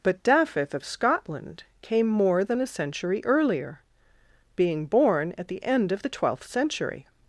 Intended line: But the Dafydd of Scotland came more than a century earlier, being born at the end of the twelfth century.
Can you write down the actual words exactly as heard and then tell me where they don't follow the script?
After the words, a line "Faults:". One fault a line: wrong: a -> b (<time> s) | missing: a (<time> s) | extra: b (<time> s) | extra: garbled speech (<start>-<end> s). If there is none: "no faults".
But Dafydd of Scotland came more than a century earlier, being born at the end of the twelfth century.
Faults:
missing: the (0.2 s)